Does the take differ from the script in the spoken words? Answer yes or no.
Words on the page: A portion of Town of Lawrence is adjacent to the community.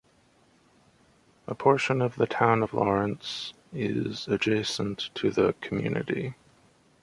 yes